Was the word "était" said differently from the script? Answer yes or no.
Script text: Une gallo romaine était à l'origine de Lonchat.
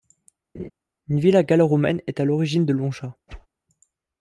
yes